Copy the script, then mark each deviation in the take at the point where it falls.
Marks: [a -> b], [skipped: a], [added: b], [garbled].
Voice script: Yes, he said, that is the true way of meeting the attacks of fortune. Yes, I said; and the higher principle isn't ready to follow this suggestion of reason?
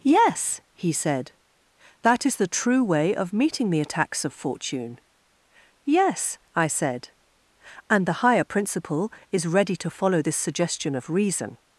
Yes, he said, that is the true way of meeting the attacks of fortune. Yes, I said; and the higher principle [isn't -> is] ready to follow this suggestion of reason?